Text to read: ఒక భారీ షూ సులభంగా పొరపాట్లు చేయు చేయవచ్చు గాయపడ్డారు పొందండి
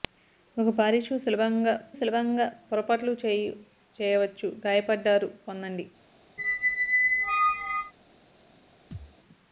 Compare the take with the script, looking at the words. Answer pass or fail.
fail